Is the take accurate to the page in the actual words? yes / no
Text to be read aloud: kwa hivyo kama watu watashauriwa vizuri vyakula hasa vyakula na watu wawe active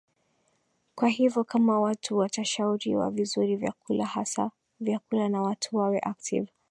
yes